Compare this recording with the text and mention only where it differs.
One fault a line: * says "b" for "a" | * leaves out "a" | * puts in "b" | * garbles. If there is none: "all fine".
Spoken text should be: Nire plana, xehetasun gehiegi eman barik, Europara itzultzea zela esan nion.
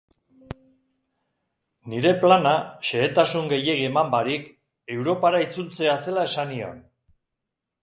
all fine